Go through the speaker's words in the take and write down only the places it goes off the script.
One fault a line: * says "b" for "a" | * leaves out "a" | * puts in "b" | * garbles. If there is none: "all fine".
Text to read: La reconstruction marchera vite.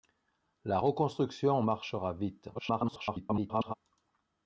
* garbles